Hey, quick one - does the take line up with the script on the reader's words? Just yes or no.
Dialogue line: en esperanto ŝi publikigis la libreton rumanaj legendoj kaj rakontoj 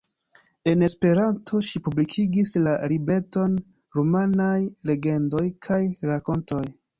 yes